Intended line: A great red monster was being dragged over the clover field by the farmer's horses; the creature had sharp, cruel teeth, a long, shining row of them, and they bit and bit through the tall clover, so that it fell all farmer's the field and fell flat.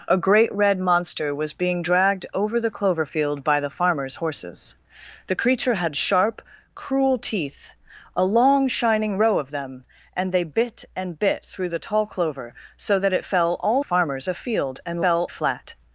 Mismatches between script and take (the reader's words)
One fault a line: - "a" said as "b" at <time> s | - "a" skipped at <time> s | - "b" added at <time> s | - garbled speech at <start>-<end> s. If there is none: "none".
none